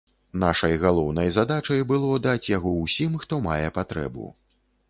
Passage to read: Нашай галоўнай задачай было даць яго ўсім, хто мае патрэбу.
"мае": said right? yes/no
yes